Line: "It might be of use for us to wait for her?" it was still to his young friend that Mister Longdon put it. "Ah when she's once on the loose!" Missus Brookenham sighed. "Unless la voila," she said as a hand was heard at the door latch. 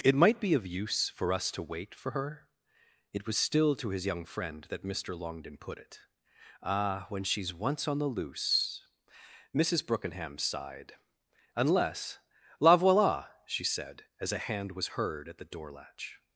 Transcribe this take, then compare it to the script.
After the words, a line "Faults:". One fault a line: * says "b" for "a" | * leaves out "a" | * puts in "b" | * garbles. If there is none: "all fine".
"It might be of use for us to wait for her?" it was still to his young friend that Mister Longdon put it. "Ah when she's once on the loose!" Missus Brookenham sighed. "Unless la voila," she said as a hand was heard at the door latch.
Faults:
all fine